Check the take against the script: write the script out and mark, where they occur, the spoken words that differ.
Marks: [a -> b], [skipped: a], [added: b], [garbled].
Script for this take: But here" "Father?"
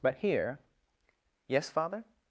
But here" [added: Yes] "Father?"